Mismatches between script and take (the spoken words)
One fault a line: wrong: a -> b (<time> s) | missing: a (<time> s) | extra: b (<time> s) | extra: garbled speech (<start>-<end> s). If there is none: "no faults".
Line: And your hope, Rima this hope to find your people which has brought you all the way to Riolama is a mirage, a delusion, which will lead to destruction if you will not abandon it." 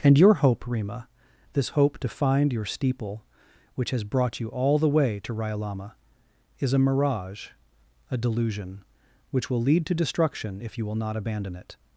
wrong: people -> steeple (2.6 s)